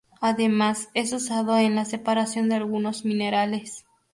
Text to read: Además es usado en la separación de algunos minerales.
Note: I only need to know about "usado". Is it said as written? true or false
true